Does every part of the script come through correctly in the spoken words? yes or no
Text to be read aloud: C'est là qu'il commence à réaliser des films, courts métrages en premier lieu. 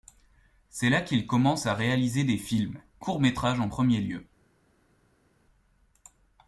yes